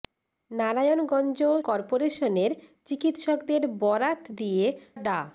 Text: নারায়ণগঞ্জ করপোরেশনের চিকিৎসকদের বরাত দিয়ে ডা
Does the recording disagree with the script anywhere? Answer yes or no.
no